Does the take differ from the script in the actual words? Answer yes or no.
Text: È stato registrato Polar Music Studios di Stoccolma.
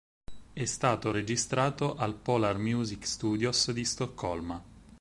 yes